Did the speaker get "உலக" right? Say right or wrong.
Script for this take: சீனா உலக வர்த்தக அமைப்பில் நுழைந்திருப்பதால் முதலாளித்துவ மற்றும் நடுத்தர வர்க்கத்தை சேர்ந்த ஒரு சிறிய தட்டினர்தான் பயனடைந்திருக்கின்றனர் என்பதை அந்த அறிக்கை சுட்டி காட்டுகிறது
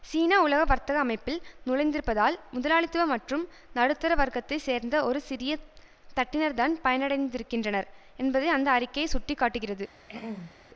right